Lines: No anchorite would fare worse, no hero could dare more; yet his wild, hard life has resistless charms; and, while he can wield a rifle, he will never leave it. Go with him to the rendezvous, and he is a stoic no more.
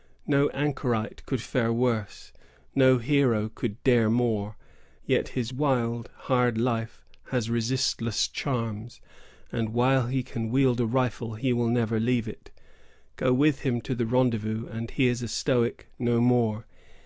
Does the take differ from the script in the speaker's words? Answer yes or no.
yes